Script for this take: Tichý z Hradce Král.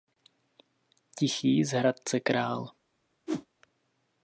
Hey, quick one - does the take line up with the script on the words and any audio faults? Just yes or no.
no